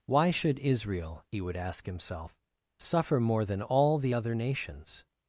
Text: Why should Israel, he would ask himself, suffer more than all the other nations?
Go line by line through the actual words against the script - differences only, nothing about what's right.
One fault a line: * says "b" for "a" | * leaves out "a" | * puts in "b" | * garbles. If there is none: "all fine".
all fine